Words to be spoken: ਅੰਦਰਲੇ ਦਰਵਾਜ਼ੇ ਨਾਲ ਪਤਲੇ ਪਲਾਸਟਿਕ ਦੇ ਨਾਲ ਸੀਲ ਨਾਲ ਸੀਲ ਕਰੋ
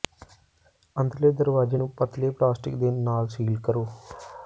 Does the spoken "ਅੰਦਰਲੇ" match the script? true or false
true